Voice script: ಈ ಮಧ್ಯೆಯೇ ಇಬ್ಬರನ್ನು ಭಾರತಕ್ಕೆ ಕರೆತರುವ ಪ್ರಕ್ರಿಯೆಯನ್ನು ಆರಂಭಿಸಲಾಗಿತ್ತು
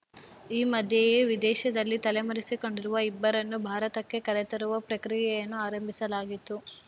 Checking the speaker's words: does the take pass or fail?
fail